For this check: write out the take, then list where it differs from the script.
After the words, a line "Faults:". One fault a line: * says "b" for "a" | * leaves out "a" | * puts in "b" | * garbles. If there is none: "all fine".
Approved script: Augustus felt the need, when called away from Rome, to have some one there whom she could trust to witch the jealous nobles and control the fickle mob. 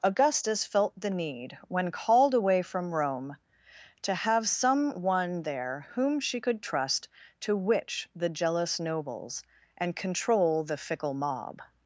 Augustus felt the need, when called away from Rome, to have some one there whom she could trust to witch the jealous nobles and control the fickle mob.
Faults:
all fine